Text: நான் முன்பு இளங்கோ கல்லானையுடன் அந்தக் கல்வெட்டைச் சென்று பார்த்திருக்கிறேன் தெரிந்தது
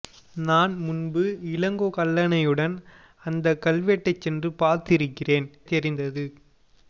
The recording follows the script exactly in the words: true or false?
true